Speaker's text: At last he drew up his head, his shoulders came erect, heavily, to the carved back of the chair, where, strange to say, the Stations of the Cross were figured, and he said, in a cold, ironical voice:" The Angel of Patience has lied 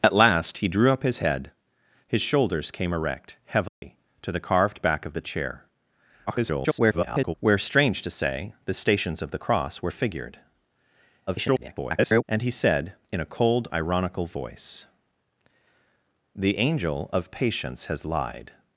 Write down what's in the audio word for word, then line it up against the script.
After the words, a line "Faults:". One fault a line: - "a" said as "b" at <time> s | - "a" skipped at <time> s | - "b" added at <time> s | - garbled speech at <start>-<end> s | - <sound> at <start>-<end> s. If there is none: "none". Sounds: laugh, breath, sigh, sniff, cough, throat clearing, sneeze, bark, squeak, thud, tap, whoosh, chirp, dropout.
At last he drew up his head, his shoulders came erect, heavily, to the carved back of the chair, [garbled] where, strange to say, the Stations of the Cross were figured, [garbled] and he said, in a cold, ironical voice:" The Angel of Patience has lied
Faults:
- dropout at 3.7-3.8 s
- garbled speech at 6.3-7.3 s
- garbled speech at 11.3-12.2 s